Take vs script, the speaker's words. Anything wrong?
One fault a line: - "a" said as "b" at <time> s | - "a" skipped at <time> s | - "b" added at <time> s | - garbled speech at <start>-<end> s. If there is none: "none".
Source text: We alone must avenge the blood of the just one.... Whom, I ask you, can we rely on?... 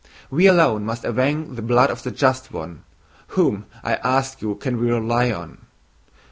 none